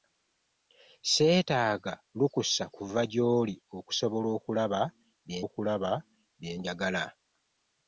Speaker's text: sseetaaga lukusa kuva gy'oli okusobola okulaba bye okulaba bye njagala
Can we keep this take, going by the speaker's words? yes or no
yes